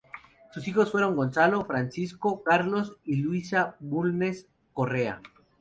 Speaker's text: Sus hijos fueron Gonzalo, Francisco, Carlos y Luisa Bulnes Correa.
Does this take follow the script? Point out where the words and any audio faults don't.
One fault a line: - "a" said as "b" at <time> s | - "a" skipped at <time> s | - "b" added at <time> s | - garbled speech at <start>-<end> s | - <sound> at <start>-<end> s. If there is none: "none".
none